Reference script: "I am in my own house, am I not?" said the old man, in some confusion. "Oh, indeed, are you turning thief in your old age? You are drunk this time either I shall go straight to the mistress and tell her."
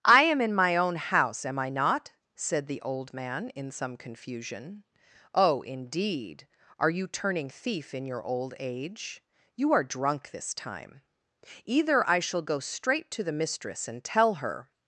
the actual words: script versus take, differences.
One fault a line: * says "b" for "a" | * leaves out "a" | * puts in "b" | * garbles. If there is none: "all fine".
all fine